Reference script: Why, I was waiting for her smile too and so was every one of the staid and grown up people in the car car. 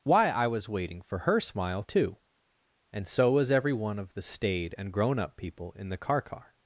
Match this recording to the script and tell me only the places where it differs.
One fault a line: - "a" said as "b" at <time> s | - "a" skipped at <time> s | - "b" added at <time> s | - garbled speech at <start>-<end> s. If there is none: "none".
none